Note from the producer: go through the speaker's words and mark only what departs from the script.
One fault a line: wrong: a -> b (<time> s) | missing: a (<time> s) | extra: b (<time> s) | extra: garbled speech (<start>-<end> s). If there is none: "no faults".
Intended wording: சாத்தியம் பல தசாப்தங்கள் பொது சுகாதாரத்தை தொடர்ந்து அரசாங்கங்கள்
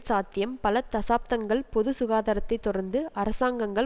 no faults